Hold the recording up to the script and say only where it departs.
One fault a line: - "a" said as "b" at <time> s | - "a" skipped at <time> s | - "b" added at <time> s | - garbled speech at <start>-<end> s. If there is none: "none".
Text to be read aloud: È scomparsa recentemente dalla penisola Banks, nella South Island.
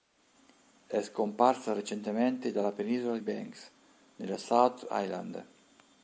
none